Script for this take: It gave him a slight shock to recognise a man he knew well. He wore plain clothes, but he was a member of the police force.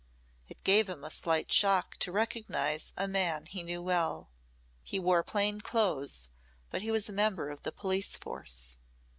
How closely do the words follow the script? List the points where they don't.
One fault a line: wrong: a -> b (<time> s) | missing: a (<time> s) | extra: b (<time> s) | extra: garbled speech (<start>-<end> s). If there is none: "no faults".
no faults